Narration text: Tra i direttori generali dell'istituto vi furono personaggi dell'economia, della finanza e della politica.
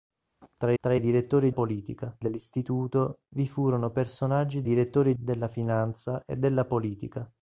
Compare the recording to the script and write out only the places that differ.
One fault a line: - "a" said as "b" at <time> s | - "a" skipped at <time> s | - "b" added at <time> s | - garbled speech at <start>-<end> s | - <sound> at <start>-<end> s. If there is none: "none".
- "tra" added at 0.8 s
- "generali" said as "politica" at 1.5 s
- "dell'economia" said as "direttori" at 4.6 s